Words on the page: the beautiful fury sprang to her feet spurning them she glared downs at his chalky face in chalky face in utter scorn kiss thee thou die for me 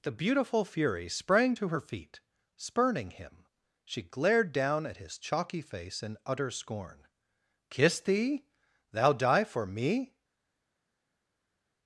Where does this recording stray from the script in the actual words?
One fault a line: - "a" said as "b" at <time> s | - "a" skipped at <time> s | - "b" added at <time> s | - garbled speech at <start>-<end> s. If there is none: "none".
- "them" said as "him" at 3.1 s
- "downs" said as "down" at 4.5 s
- "chalky face in" skipped at 6.2 s